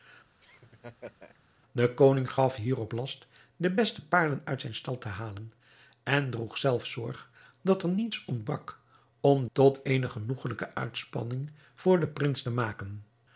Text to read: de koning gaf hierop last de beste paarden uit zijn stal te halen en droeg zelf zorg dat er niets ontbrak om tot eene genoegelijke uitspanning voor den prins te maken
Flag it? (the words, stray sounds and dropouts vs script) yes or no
yes